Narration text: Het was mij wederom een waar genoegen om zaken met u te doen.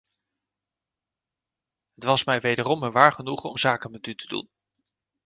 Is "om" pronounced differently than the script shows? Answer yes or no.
no